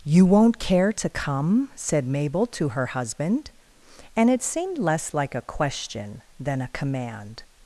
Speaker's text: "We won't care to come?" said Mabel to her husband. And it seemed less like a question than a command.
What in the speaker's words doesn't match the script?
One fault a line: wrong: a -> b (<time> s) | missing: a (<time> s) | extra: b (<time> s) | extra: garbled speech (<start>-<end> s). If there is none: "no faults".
wrong: We -> You (0.0 s)